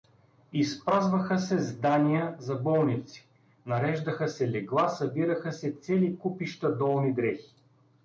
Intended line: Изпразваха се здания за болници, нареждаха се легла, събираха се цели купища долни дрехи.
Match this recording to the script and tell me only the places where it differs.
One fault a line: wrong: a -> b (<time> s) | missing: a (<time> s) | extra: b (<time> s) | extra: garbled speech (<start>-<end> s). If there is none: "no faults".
no faults